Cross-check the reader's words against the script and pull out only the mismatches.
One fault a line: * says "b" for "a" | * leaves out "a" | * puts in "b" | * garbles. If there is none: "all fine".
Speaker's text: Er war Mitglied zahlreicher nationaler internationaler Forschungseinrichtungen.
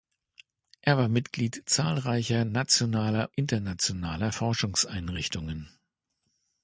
all fine